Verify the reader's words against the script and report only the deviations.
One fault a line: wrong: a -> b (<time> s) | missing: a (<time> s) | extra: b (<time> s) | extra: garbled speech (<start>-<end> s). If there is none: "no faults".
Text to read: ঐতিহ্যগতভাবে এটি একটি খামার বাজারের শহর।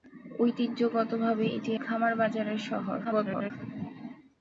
missing: একটি (1.7 s)
extra: garbled speech (3.0-3.5 s)